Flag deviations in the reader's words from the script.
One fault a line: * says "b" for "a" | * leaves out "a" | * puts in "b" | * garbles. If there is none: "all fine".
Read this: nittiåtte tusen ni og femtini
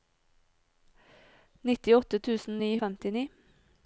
all fine